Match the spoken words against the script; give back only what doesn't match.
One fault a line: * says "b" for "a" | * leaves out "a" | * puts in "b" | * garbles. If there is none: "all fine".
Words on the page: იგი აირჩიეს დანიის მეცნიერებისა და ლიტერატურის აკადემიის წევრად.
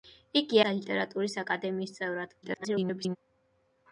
* leaves out "აირჩიეს დანიის მეცნიერებისა"
* garbles